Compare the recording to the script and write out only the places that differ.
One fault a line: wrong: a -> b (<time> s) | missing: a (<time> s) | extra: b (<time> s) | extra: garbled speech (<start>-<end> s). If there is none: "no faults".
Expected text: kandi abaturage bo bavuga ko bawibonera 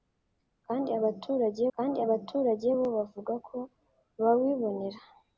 extra: kandi abaturage (1.7 s)